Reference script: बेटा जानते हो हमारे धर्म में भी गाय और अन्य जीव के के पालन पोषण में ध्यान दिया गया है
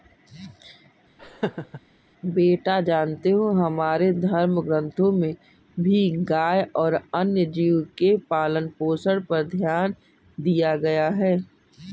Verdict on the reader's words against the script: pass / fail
fail